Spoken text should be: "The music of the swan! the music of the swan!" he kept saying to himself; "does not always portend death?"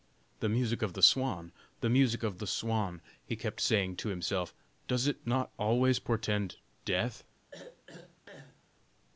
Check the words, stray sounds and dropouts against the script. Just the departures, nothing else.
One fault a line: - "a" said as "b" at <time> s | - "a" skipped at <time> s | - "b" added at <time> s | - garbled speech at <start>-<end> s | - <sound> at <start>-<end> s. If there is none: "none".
- "it" added at 5.0 s
- throat clearing at 7.5-8.6 s